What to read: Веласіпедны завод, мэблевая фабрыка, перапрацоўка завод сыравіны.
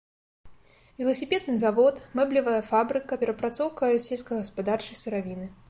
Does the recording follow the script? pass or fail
fail